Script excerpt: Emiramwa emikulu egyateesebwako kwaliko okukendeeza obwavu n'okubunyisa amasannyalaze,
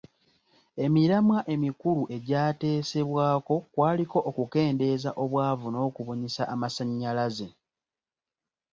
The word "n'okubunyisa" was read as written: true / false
true